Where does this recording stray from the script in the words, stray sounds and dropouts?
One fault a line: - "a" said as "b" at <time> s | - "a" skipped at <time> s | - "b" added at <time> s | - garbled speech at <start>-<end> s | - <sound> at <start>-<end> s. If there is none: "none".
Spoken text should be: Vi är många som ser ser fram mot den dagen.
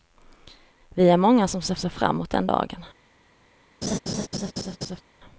- laugh at 3.8-5.0 s